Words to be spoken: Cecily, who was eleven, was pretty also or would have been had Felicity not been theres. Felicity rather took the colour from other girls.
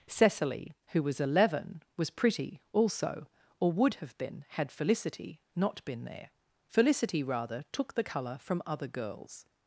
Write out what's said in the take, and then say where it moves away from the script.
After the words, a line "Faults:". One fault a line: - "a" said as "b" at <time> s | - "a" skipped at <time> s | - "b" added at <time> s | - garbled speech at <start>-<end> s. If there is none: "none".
Cecily, who was eleven, was pretty also or would have been had Felicity not been there. Felicity rather took the colour from other girls.
Faults:
- "theres" said as "there" at 6.1 s